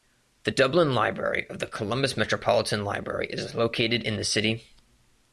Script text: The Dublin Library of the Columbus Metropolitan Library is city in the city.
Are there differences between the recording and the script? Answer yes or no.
yes